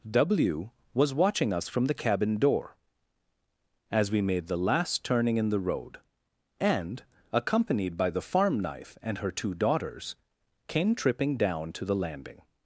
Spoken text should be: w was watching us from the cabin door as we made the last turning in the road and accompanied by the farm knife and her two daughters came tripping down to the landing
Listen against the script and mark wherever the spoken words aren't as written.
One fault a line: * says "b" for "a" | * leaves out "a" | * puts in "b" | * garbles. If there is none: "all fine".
all fine